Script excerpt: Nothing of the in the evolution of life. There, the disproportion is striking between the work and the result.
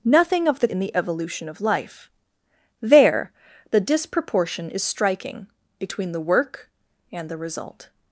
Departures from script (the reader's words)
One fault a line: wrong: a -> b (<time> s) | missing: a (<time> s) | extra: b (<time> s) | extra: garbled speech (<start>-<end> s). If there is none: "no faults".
no faults